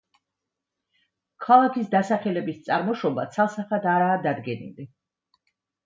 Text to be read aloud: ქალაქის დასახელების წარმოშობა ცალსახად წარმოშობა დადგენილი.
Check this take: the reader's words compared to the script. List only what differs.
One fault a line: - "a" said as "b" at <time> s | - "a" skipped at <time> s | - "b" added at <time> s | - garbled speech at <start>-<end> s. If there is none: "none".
- "წარმოშობა" said as "არაა" at 4.0 s